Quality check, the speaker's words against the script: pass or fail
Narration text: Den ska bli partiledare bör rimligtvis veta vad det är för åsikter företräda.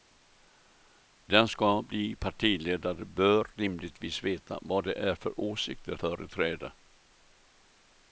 pass